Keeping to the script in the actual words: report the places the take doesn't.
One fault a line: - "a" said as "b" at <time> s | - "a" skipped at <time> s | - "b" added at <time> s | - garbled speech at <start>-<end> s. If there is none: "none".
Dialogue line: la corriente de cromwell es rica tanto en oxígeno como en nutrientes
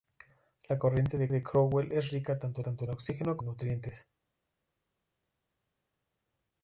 - "de" added at 1.3 s
- "tanto" added at 2.6 s
- "como" skipped at 3.4 s